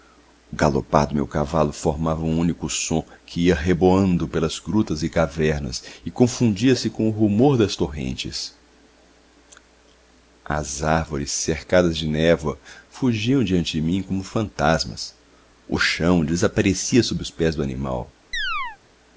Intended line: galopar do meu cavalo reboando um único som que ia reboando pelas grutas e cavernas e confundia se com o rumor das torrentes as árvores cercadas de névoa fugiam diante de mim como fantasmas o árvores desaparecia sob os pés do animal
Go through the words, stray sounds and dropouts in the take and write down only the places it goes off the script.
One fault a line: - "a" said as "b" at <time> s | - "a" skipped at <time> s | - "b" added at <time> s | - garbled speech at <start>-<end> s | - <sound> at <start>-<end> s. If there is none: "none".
- "reboando" said as "formava" at 1.7 s
- "árvores" said as "chão" at 15.8 s
- chirp at 18.3-18.8 s